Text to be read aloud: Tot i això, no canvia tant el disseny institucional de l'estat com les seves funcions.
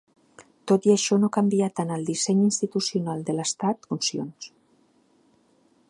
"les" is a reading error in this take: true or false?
true